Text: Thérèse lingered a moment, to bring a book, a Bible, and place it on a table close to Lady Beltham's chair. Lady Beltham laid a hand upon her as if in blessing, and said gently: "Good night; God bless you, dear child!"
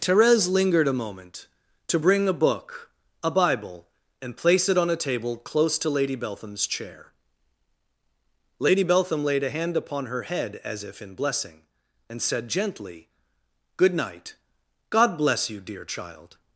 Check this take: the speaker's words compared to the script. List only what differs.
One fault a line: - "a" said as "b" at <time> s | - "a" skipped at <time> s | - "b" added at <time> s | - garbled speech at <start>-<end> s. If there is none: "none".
- "head" added at 10.2 s